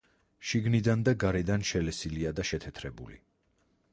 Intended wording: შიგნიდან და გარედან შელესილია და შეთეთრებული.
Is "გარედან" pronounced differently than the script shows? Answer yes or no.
no